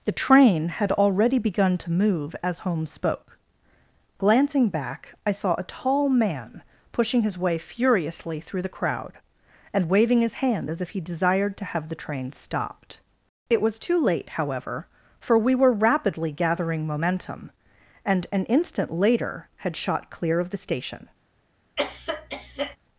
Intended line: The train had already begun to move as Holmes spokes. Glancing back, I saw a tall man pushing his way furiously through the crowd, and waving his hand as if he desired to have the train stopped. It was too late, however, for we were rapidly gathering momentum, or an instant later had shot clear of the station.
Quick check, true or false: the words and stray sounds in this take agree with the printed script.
false